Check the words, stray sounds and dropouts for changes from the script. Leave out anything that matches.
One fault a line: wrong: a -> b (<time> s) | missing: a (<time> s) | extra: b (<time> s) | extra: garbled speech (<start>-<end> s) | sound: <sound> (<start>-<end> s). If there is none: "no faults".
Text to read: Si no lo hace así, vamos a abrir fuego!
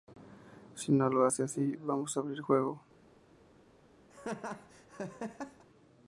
sound: laugh (4.1-5.6 s)